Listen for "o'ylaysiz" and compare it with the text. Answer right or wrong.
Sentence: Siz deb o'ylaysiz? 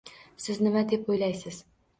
right